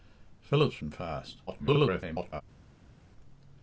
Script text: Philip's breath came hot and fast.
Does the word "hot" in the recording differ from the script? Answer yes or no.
yes